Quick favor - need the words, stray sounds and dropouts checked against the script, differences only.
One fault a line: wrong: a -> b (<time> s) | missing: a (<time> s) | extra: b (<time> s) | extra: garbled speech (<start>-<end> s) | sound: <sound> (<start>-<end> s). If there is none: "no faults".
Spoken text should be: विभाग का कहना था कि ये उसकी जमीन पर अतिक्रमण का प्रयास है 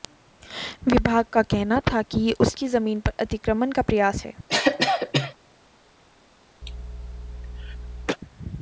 sound: cough (4.5-5.3 s)
sound: cough (6.6-8.2 s)